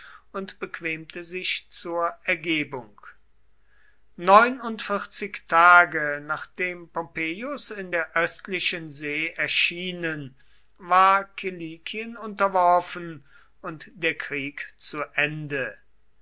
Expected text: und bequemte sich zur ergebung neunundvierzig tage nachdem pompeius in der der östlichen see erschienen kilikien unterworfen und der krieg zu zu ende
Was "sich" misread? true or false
false